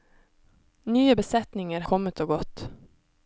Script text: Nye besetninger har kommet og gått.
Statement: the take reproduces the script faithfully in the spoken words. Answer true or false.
false